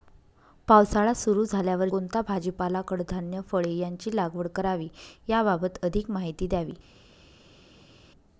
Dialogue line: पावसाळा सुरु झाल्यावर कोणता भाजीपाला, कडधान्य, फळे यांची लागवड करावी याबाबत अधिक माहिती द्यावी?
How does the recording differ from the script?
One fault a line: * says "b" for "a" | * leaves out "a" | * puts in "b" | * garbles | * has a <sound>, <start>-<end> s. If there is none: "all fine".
all fine